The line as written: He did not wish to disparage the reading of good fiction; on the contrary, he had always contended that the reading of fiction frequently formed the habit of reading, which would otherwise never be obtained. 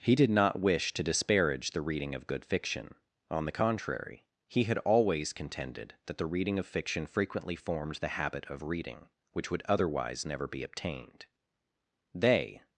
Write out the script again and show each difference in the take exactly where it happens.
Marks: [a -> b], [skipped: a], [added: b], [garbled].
He did not wish to disparage the reading of good fiction; on the contrary, he had always contended that the reading of fiction frequently formed the habit of reading, which would otherwise never be obtained. [added: They]